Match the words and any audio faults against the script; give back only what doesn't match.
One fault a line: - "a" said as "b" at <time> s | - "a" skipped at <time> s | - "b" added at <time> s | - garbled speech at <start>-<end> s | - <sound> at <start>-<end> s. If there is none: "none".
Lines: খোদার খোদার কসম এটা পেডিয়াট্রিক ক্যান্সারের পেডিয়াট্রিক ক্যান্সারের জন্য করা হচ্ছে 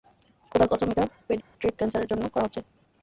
- "খোদার" skipped at 0.7 s
- dropout at 1.4-1.5 s
- "পেডিয়াট্রিক ক্যান্সারের" skipped at 2.1 s